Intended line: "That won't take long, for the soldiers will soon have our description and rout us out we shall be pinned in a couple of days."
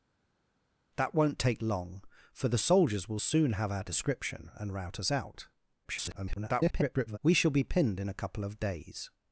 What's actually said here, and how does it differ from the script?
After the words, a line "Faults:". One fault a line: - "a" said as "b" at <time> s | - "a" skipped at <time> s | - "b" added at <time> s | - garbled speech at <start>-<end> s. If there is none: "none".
"That won't take long, for the soldiers will soon have our description and rout us out [garbled] we shall be pinned in a couple of days."
Faults:
- garbled speech at 5.8-7.2 s